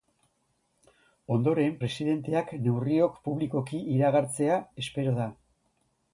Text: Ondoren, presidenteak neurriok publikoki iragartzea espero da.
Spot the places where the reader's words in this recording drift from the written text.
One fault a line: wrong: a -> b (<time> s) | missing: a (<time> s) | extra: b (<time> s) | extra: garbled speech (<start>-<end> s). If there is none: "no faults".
no faults